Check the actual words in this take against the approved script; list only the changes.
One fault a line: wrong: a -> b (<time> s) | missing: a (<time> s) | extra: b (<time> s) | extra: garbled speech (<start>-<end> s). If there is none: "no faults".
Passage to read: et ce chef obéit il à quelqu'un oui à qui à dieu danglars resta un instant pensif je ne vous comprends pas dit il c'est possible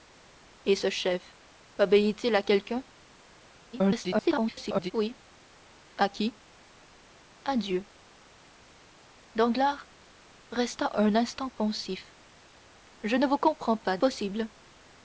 extra: garbled speech (3.7-4.9 s)
missing: dit il c'est (14.0 s)